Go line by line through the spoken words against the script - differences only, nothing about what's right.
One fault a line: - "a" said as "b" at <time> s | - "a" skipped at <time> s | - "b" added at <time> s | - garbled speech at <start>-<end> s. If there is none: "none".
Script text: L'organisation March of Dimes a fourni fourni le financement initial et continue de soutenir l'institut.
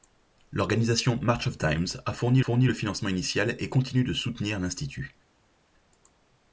none